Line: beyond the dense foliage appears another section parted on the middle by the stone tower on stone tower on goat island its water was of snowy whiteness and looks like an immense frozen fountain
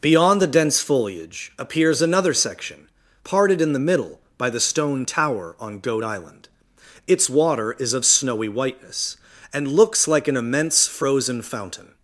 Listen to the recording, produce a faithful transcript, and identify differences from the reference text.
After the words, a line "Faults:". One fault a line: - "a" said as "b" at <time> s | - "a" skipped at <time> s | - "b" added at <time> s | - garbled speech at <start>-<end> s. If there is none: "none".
beyond the dense foliage appears another section parted in the middle by the stone tower on goat island its water is of snowy whiteness and looks like an immense frozen fountain
Faults:
- "on" said as "in" at 3.6 s
- "stone tower on" skipped at 5.8 s
- "was" said as "is" at 7.8 s